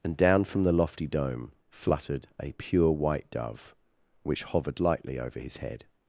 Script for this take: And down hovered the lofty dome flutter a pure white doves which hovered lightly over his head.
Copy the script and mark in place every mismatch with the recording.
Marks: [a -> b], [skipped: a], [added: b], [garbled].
And down [hovered -> from] the lofty dome [flutter -> fluttered] a pure white [doves -> dove] which hovered lightly over his head.